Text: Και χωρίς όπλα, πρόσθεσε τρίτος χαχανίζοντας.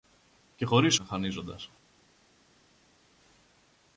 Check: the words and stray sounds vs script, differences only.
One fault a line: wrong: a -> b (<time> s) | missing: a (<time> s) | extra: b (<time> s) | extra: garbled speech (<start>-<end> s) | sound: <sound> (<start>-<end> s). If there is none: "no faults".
missing: όπλα πρόσθεσε τρίτος (1.0 s)